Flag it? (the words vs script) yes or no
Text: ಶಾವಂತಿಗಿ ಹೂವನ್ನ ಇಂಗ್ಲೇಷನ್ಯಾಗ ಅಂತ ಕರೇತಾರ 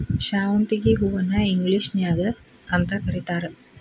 no